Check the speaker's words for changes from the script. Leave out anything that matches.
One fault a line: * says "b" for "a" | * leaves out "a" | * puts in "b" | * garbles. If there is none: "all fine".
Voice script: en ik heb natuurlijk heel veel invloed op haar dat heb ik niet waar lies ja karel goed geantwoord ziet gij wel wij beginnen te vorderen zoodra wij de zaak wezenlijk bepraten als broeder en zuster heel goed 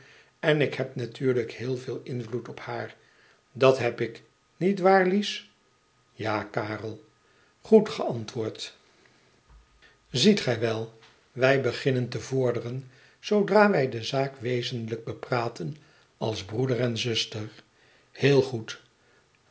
all fine